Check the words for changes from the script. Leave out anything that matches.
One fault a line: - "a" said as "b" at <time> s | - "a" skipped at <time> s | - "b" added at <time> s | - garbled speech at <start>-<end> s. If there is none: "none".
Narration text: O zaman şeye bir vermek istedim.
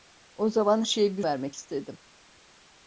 none